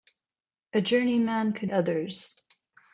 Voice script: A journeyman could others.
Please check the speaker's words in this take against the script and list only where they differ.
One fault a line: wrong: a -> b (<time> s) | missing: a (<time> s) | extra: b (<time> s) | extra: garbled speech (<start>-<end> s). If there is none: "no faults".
no faults